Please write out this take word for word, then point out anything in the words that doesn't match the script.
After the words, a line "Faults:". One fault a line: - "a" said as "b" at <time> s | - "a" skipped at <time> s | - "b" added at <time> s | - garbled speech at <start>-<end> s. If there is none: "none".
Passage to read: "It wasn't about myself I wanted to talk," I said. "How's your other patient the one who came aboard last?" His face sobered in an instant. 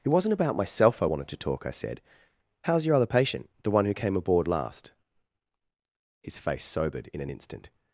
"It wasn't about myself I wanted to talk," I said. "How's your other patient the one who came aboard last?" His face sobered in an instant.
Faults:
none